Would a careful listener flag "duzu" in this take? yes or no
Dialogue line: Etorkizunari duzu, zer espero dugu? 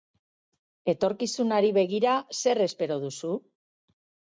yes